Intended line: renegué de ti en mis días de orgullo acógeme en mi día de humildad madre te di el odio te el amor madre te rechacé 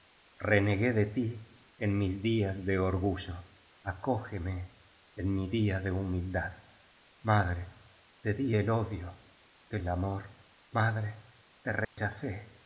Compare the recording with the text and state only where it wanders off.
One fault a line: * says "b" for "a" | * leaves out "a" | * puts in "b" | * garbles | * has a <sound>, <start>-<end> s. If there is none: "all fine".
* has a dropout, 11.8-12.0 s